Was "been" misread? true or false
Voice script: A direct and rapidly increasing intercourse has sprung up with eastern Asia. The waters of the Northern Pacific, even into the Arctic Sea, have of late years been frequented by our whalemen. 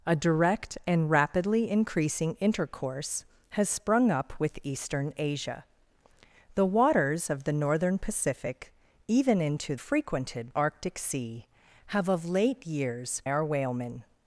true